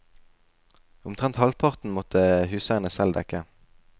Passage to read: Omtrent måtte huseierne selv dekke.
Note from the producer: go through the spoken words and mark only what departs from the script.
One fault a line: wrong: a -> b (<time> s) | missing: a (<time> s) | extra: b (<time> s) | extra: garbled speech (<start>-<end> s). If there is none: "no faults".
extra: halvparten (1.4 s)